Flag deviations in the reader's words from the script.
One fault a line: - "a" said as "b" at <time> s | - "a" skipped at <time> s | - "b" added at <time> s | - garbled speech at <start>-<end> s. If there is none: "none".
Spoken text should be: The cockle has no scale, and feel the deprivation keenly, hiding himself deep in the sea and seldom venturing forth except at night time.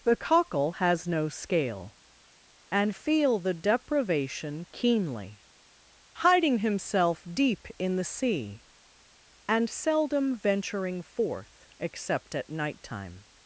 none